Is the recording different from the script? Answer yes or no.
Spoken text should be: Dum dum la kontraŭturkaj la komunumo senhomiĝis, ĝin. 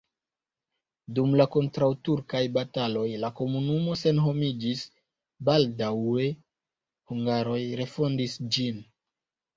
yes